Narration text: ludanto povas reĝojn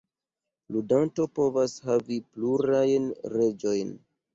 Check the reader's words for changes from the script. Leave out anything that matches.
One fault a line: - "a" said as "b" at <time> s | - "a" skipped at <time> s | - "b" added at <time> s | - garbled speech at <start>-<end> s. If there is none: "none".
- "havi plurajn" added at 1.9 s